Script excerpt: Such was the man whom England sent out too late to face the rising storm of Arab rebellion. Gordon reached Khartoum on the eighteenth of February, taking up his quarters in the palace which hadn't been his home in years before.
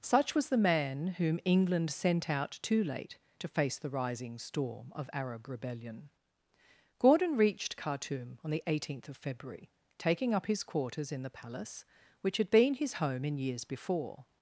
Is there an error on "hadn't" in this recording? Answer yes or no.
yes